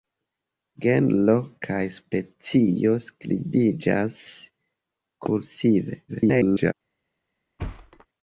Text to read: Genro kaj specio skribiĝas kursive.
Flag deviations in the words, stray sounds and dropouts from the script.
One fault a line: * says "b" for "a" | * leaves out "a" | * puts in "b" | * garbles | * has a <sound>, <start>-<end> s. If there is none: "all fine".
* garbles
* has a thud, 7.6-8.1 s